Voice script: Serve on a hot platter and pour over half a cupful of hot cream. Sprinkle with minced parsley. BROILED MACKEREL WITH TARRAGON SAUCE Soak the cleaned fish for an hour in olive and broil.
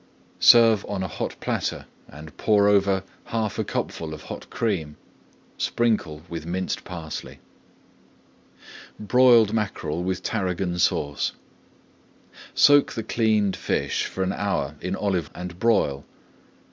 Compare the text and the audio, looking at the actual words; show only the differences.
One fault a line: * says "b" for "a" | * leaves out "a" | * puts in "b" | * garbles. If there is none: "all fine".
all fine